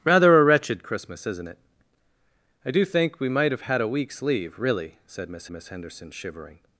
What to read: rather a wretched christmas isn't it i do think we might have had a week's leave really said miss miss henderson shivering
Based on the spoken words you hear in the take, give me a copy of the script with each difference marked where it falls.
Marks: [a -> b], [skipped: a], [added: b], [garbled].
rather a wretched christmas isn't it i do think we might have had a week's leave really said miss miss henderson shivering